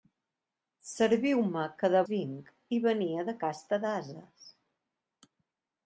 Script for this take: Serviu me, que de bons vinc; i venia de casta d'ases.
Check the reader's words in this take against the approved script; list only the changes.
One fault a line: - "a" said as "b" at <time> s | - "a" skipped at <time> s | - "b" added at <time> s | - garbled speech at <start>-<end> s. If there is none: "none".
- "bons" skipped at 2.0 s